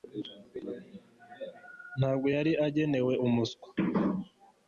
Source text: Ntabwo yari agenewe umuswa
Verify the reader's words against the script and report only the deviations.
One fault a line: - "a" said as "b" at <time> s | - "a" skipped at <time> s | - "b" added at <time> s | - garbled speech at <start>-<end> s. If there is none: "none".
none